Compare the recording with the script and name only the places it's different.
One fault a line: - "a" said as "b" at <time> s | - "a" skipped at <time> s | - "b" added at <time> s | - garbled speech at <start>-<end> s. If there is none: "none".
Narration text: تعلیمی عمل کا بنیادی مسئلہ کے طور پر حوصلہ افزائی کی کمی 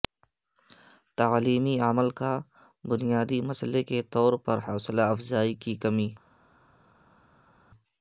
none